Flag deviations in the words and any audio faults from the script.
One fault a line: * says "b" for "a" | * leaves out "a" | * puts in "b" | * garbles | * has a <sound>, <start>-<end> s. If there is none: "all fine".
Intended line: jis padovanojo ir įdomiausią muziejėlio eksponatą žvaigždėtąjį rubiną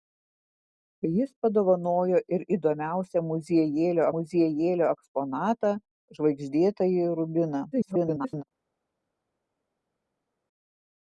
* puts in "muziejėlio"
* garbles